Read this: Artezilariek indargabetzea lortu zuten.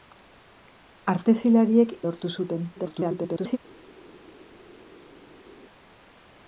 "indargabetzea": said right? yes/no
no